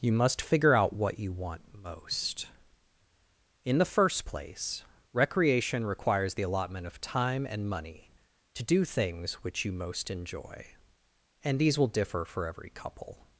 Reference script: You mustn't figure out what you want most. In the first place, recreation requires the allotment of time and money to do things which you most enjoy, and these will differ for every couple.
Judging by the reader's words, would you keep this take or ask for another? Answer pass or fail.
fail